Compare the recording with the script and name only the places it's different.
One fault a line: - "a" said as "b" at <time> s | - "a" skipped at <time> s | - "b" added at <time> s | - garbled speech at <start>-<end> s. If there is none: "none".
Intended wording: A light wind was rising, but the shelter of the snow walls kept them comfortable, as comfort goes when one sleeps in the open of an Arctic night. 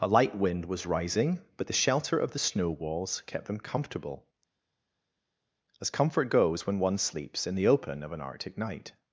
none